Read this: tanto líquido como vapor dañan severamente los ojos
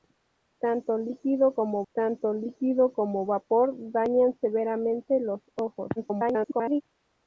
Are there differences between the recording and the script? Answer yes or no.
yes